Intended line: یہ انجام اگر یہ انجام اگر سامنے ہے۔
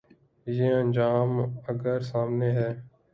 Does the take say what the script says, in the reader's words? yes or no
no